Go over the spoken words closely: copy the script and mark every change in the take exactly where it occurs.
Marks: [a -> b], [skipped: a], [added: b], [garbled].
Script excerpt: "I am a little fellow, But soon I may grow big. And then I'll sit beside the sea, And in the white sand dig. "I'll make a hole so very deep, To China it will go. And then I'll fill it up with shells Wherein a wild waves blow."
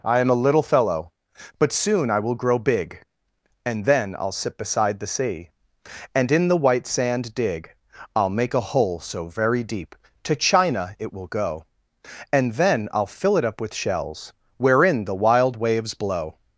"I am a little fellow, But soon I [may -> will] grow big. And then I'll sit beside the sea, And in the white sand dig. "I'll make a hole so very deep, To China it will go. And then I'll fill it up with shells Wherein [a -> the] wild waves blow."